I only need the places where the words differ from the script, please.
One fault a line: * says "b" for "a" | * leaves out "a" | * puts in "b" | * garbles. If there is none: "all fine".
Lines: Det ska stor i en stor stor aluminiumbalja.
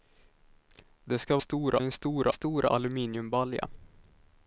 all fine